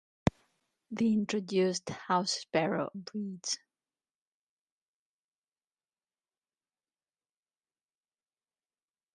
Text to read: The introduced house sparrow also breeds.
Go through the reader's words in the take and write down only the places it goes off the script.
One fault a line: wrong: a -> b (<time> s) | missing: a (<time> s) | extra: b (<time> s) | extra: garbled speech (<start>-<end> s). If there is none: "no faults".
missing: also (2.9 s)